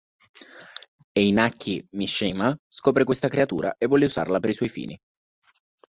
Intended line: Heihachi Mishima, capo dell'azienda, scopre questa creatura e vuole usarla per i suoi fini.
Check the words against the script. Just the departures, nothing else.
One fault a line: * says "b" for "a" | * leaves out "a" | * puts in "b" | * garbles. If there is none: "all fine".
* leaves out "capo dell'azienda"